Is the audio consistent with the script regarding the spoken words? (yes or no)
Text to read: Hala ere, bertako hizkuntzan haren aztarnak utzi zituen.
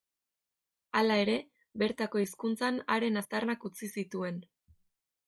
yes